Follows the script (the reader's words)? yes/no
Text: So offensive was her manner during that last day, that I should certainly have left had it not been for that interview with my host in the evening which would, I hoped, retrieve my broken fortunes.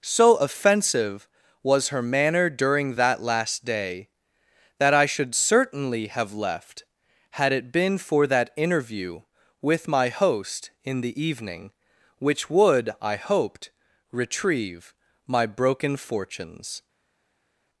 no